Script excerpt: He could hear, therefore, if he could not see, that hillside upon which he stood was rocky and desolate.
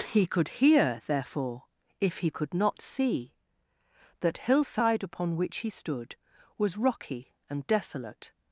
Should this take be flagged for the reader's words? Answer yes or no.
no